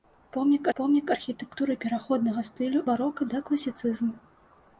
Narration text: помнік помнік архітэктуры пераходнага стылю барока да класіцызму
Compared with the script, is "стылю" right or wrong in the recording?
right